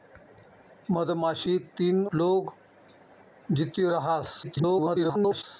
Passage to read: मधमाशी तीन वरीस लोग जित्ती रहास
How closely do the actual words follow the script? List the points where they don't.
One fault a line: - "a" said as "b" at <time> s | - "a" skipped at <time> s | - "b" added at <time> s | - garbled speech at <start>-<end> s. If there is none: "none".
- "वरीस" skipped at 2.0 s
- garbled speech at 4.4-5.4 s